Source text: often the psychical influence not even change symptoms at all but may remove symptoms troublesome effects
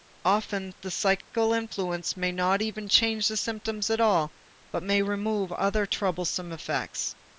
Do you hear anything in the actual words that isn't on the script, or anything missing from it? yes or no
yes